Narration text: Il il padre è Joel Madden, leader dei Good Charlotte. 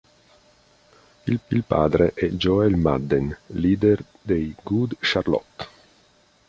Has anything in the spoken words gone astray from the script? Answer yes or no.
no